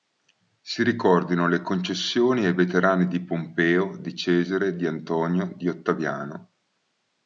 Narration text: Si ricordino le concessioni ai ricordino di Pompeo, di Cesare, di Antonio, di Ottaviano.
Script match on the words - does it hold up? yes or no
no